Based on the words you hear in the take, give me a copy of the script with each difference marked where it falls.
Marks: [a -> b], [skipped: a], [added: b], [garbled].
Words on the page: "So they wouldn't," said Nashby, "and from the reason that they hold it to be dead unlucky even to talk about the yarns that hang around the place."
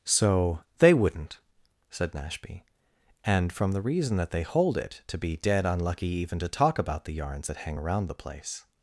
"So they wouldn't," said Nashby, "and from the reason that they hold it to be dead unlucky even to talk about the yarns that hang around the place."